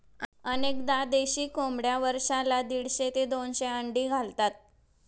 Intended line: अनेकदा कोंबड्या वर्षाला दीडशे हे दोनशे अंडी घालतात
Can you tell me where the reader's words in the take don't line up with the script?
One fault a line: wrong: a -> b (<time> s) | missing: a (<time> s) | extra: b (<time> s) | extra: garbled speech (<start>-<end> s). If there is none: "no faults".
extra: देशी (1.1 s)
wrong: हे -> ते (3.1 s)